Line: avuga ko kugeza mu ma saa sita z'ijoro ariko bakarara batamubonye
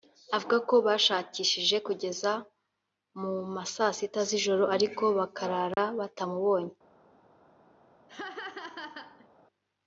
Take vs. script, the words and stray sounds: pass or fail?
fail